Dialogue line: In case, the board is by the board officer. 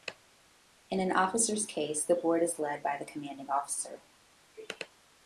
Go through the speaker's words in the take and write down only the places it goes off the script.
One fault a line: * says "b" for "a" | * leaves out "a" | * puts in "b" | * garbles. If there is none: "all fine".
* puts in "an officer's"
* puts in "led"
* says "commanding" for "board"